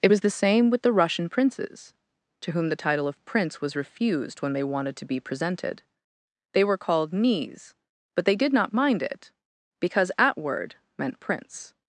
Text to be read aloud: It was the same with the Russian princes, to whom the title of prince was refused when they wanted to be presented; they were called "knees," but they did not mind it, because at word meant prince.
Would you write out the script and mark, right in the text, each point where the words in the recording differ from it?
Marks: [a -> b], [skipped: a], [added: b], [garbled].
It was the same with the Russian princes, to whom the title of prince was refused when they wanted to be presented; they were called "knees," but they did not mind it, because at word meant prince.